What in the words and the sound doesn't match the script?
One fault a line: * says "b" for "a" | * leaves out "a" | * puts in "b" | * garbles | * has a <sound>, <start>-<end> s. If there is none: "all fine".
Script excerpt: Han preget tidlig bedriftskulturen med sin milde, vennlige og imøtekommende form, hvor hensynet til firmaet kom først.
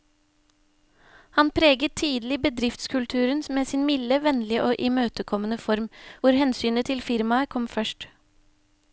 all fine